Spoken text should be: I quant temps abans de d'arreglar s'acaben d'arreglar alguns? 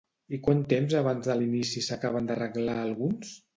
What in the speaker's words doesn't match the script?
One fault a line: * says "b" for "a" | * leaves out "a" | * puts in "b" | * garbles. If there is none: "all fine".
* says "l'inici" for "d'arreglar"